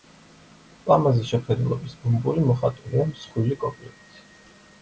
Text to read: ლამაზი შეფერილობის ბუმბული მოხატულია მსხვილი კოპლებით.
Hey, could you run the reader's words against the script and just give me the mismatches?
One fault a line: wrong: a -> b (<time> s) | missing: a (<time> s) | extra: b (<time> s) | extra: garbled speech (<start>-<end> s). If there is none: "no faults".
no faults